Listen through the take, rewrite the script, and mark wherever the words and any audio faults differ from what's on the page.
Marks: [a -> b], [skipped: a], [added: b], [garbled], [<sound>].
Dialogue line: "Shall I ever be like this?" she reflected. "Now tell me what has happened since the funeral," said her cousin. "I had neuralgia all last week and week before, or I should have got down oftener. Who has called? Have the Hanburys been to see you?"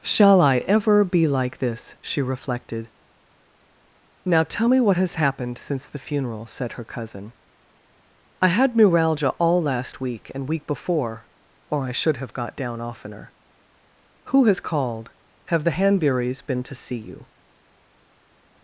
"Shall I ever be like this?" she reflected. "Now tell me what has happened since the funeral," said her cousin. "I had neuralgia all last week and week before, or I should have got down oftener. Who has called? Have the Hanburys been to see you?"